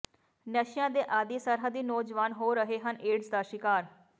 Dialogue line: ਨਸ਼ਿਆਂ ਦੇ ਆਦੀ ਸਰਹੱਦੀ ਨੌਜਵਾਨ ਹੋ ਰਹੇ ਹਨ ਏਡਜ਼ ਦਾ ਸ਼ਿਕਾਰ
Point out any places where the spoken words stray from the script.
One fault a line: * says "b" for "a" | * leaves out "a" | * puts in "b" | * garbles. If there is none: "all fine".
all fine